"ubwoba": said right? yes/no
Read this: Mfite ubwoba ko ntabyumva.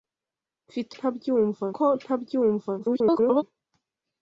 no